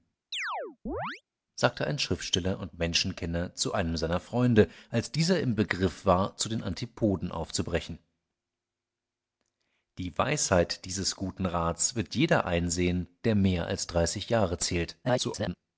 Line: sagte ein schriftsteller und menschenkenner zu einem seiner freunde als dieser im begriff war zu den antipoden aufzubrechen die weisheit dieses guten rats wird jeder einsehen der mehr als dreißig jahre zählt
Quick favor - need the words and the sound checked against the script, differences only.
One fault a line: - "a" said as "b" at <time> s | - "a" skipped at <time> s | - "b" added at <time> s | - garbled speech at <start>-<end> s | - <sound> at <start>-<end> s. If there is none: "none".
- chirp at 0.3-1.2 s
- garbled speech at 15.0-15.6 s